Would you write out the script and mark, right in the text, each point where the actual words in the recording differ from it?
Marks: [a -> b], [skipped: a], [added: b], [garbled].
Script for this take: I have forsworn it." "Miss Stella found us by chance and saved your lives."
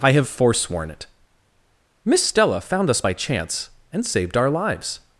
I have forsworn it." "Miss Stella found us by chance and saved [your -> our] lives."